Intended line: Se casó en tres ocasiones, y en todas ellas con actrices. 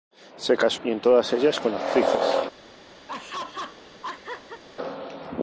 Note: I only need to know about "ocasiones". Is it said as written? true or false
false